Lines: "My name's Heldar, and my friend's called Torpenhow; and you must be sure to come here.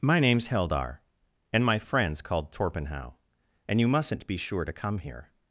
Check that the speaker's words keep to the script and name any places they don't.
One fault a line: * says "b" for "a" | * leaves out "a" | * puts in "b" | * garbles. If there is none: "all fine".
* says "mustn't" for "must"